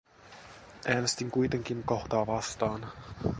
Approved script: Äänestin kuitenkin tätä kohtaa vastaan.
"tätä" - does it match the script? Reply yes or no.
no